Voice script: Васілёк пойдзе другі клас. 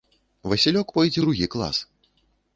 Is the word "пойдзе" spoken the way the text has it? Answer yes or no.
yes